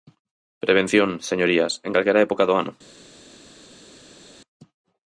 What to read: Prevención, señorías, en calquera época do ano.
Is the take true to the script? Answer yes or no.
yes